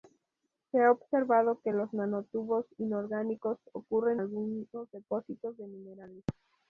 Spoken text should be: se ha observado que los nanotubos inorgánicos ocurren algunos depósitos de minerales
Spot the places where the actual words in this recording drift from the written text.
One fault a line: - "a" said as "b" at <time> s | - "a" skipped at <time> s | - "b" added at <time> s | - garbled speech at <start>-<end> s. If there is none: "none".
none